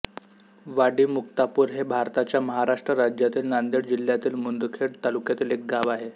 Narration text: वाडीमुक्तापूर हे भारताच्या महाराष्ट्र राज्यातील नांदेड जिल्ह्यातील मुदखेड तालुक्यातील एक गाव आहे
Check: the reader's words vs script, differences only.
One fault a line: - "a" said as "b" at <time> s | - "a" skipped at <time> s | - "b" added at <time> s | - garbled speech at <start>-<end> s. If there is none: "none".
none